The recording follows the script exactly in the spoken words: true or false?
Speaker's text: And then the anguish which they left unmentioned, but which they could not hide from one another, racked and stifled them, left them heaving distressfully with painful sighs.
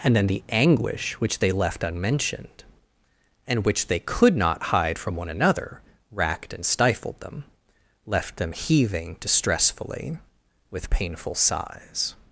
false